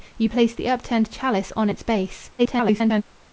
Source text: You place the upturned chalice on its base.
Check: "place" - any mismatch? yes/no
no